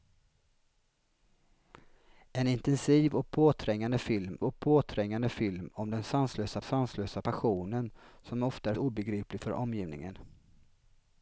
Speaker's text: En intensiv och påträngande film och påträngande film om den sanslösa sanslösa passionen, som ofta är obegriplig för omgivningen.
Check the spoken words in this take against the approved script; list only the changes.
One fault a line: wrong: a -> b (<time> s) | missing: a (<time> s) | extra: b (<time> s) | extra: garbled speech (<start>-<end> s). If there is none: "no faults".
no faults